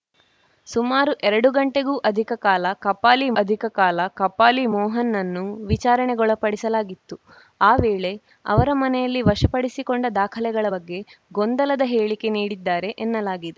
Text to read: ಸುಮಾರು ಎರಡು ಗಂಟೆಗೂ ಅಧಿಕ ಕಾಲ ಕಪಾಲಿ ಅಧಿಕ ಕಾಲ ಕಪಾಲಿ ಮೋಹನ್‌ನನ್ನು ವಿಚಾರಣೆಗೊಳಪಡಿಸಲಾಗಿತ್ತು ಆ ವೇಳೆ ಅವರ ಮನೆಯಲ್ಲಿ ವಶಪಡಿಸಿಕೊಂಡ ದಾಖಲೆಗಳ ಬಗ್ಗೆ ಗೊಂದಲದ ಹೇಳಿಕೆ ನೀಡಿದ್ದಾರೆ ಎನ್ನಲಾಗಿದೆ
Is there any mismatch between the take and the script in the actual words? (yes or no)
no